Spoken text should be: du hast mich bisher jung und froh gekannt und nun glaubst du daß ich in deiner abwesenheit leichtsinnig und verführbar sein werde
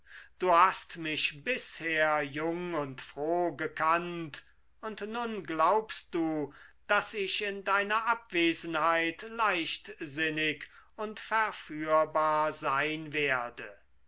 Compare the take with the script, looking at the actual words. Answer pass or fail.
pass